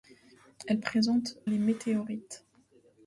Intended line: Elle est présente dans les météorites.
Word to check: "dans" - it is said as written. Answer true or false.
false